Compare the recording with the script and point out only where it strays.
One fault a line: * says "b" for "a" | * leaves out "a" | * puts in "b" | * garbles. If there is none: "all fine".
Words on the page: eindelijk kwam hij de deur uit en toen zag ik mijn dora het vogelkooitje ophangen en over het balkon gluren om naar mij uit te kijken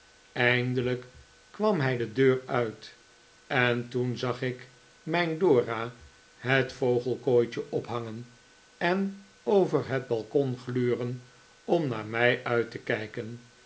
all fine